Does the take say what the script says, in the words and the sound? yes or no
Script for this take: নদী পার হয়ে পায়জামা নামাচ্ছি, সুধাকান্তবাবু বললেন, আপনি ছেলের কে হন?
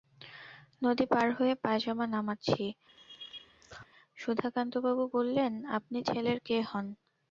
no